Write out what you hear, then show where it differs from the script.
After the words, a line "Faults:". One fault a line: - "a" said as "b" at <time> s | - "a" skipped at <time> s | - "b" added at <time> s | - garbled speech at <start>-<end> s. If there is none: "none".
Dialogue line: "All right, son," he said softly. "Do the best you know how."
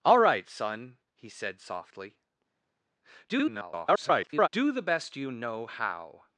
"All right, son," he said softly. [garbled] "Do the best you know how."
Faults:
- garbled speech at 3.3-4.5 s